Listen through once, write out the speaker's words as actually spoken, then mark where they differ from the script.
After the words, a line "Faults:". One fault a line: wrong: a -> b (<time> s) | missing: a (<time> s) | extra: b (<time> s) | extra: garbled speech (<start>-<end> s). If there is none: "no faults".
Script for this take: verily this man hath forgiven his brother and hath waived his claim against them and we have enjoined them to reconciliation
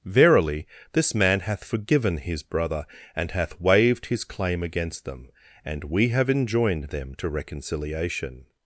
verily this man hath forgiven his brother and hath waived his claim against them and we have enjoined them to reconciliation
Faults:
no faults